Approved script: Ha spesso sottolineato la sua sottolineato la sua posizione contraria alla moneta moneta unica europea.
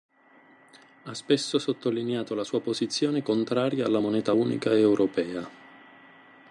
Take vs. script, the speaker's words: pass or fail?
fail